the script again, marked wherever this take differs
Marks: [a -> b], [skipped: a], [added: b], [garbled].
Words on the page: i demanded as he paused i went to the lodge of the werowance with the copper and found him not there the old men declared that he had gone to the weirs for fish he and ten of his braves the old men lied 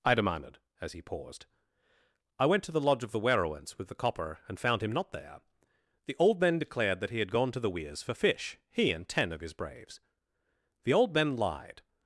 i demanded as he paused i went to the lodge of the werowance with the copper and found him not there the old men declared that he had gone to the weirs for fish he and ten of his braves the old men lied